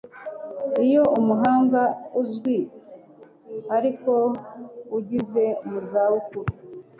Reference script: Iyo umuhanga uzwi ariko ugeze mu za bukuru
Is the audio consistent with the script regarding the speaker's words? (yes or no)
yes